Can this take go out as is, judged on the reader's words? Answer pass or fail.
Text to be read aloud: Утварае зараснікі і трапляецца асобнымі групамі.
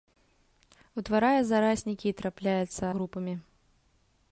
fail